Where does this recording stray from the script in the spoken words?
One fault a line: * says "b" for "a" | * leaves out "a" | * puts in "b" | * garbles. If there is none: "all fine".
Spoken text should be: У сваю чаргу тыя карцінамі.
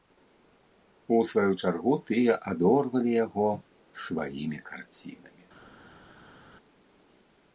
* puts in "адорвалі яго сваімі"